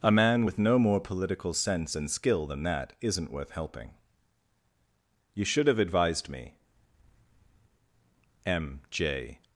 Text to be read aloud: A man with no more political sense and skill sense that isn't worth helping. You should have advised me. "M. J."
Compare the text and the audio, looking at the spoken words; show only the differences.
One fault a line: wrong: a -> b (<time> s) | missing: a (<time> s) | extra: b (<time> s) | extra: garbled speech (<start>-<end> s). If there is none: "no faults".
wrong: sense -> than (2.5 s)